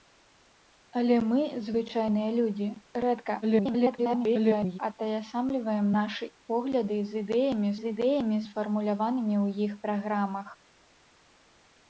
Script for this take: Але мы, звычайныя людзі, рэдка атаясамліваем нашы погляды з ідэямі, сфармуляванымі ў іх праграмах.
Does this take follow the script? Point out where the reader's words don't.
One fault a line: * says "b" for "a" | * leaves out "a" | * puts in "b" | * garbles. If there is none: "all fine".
* garbles
* puts in "з ідэямі"